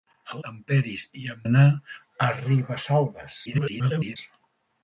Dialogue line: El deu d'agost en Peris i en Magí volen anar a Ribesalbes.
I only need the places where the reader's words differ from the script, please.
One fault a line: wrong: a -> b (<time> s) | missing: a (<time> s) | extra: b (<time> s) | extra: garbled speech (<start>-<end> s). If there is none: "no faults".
missing: deu d'agost (0.4 s)
missing: Magí volen (1.4 s)
extra: garbled speech (3.4-4.2 s)